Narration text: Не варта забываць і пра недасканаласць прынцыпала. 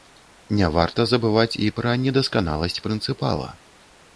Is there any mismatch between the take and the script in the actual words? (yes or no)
no